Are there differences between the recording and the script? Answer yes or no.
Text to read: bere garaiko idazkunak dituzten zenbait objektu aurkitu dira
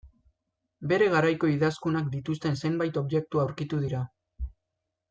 no